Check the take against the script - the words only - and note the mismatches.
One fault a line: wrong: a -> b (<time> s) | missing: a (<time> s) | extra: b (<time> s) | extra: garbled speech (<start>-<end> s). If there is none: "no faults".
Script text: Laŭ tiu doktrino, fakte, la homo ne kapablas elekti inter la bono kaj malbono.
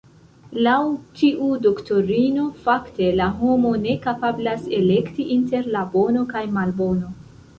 no faults